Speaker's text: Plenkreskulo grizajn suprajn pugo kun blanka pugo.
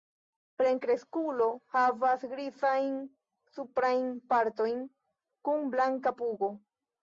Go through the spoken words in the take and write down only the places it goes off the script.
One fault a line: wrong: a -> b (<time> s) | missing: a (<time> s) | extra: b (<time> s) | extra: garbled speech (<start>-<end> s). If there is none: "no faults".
extra: havas (1.7 s)
wrong: pugo -> partojn (4.3 s)